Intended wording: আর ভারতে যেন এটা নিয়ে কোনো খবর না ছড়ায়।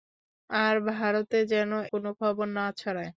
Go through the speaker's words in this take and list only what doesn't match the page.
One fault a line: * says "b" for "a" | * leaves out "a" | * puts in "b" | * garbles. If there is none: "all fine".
* leaves out "এটা নিয়ে"